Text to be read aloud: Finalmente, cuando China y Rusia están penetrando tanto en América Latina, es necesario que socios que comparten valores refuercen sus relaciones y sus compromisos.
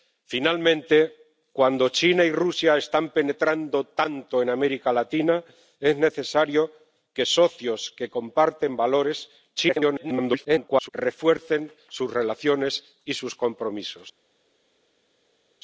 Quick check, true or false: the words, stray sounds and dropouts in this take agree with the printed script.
false